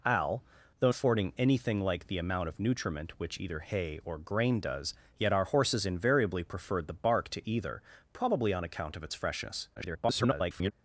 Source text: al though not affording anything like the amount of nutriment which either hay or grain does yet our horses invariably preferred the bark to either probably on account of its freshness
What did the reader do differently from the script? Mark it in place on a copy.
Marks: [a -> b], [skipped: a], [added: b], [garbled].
al though [skipped: not] affording anything like the amount of nutriment which either hay or grain does yet our horses invariably preferred the bark to either probably on account of its freshness [garbled]